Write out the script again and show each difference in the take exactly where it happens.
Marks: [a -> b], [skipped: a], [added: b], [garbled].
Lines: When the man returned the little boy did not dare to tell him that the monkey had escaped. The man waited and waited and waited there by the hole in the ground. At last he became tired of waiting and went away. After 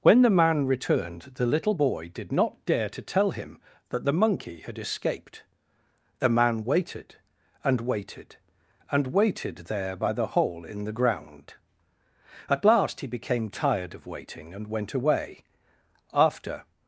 When the man returned the little boy did not dare to tell him that the monkey had escaped. The man waited and waited and waited there by the hole in the ground. At last he became tired of waiting and went away. After